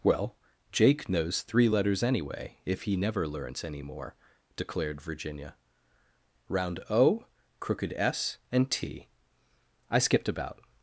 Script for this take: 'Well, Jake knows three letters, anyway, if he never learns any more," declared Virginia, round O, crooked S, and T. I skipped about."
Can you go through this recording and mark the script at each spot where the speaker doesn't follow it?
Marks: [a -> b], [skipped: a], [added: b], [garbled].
'Well, Jake knows three letters, anyway, if he never learns any more," declared Virginia, round O, crooked S, and T. I skipped about."